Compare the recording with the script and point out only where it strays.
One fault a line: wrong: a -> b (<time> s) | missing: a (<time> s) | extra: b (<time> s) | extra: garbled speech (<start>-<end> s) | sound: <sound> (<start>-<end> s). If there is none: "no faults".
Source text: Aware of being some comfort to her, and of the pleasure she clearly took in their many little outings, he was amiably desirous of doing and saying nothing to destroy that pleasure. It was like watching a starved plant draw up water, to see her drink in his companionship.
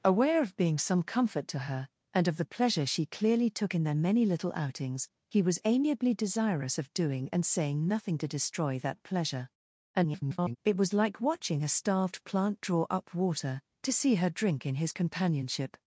extra: garbled speech (9.9-10.6 s)